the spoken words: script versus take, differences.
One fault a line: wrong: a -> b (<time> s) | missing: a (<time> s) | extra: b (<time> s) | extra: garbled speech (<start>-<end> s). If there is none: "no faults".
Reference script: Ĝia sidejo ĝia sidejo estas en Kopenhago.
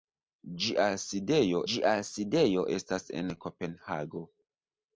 no faults